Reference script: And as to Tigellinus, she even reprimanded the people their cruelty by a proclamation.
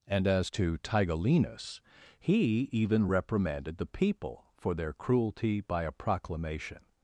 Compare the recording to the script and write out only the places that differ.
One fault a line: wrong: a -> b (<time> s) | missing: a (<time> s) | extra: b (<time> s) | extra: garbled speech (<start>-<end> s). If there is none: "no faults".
wrong: she -> he (2.2 s)
extra: for (4.6 s)